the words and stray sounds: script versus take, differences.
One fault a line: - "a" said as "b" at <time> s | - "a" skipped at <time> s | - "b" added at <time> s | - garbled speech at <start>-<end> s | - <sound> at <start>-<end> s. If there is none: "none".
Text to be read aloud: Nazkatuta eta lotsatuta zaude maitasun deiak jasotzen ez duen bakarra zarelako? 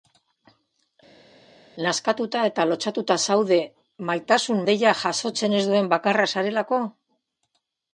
none